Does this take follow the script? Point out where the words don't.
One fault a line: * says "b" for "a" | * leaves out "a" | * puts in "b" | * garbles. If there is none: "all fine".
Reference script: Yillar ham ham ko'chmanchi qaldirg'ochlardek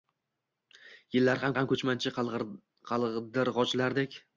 all fine